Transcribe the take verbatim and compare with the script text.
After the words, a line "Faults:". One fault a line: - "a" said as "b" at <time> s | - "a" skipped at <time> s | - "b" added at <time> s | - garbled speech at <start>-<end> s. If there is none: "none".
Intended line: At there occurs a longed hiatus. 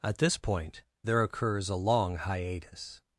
At this point there occurs a long hiatus.
Faults:
- "this point" added at 0.2 s
- "longed" said as "long" at 1.8 s